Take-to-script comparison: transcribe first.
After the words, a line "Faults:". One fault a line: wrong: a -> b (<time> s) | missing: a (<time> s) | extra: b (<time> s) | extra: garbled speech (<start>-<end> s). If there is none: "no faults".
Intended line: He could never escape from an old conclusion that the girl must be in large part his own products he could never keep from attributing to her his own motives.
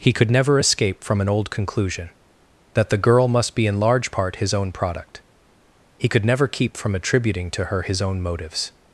He could never escape from an old conclusion that the girl must be in large part his own product he could never keep from attributing to her his own motives.
Faults:
wrong: products -> product (4.7 s)